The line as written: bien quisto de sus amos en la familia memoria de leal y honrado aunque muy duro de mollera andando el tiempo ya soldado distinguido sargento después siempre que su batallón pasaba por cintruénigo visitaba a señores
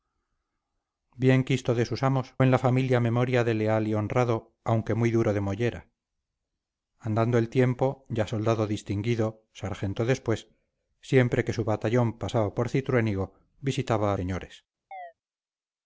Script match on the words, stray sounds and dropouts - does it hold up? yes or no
no